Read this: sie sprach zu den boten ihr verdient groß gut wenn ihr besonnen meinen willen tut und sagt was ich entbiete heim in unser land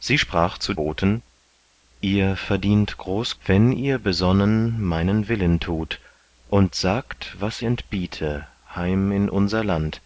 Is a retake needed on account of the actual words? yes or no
yes